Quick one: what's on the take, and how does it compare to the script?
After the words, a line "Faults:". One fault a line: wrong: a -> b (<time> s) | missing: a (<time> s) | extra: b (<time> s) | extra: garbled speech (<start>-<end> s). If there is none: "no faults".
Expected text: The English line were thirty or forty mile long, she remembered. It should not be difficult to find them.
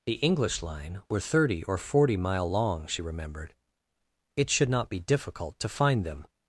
The English line were thirty or forty mile long, she remembered. It should not be difficult to find them.
Faults:
no faults